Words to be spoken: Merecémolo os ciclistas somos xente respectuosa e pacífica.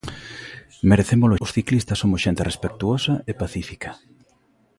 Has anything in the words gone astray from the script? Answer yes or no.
no